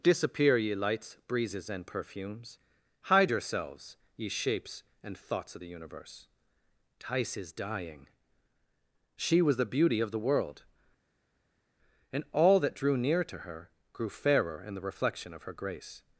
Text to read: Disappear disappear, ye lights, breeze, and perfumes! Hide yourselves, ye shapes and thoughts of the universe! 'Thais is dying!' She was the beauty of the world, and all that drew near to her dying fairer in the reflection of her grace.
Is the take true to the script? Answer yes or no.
no